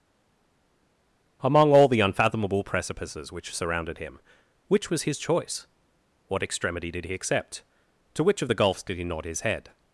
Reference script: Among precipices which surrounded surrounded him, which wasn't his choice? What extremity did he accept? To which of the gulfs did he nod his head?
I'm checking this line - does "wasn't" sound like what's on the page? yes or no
no